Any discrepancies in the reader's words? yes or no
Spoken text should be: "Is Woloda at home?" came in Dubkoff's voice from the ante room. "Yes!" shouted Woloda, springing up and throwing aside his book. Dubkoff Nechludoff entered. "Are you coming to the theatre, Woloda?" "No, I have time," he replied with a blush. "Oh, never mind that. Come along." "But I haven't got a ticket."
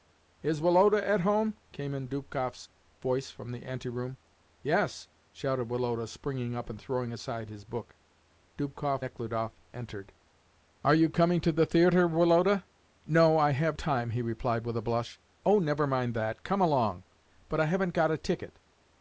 no